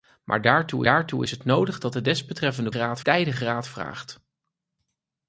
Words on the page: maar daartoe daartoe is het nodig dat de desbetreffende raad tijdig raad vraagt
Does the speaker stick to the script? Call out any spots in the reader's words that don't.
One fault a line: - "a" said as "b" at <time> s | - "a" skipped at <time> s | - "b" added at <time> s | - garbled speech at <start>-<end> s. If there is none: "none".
none